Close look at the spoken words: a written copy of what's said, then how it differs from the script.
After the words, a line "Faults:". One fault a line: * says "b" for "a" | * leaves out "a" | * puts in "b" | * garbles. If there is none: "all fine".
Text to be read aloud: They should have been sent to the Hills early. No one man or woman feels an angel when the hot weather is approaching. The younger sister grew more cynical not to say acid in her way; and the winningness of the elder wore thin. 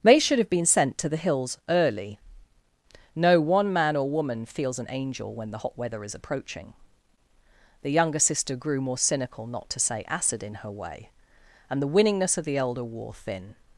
They should have been sent to the Hills early. No one man or woman feels an angel when the hot weather is approaching. The younger sister grew more cynical not to say acid in her way; and the winningness of the elder wore thin.
Faults:
all fine